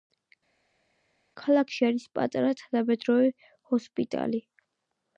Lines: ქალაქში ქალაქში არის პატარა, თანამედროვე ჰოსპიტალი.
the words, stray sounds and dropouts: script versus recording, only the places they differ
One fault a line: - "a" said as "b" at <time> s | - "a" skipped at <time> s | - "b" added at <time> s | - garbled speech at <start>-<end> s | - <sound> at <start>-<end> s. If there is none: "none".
- "ქალაქში" skipped at 1.9 s